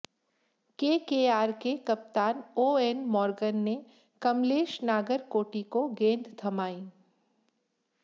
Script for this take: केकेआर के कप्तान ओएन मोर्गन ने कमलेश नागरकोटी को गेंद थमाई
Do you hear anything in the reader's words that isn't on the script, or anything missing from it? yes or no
no